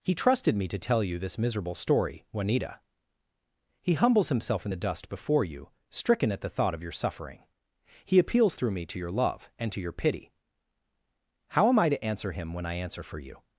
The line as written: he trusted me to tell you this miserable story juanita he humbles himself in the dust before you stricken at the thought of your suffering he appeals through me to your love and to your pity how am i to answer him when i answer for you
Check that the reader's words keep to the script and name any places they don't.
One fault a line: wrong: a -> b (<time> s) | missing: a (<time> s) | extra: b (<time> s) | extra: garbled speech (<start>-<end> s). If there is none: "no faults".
no faults